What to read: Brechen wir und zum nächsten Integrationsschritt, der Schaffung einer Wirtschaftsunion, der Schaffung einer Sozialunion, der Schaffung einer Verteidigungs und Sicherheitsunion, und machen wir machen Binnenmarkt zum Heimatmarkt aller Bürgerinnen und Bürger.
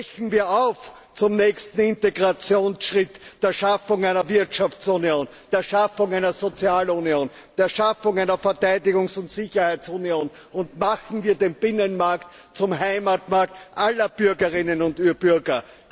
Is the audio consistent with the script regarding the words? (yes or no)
no